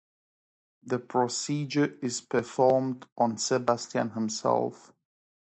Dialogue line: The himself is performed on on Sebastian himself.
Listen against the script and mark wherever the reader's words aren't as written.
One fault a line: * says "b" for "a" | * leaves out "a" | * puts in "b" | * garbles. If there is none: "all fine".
* says "procedure" for "himself"
* leaves out "on"